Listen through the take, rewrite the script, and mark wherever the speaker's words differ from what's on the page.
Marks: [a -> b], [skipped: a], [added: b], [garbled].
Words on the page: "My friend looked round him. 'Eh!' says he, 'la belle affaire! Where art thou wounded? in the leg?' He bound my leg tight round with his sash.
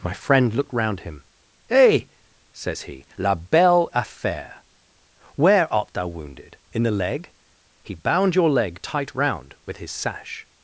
"My friend looked round him. 'Eh!' says he, 'la belle affaire! Where art thou wounded? in the leg?' He bound [my -> your] leg tight round with his sash.